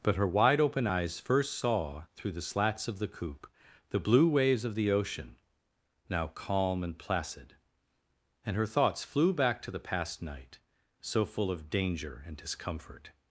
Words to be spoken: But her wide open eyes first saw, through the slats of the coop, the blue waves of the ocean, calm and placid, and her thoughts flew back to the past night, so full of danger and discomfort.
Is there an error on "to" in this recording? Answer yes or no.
no